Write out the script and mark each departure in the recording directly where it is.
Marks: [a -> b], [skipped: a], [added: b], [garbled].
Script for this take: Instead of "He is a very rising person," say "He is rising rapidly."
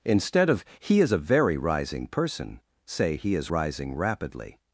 Instead of "He is a very rising person," say "He is rising rapidly."